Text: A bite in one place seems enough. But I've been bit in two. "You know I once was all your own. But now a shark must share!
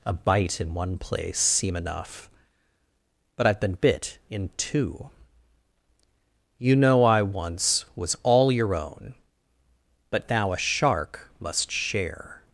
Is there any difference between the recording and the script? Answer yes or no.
yes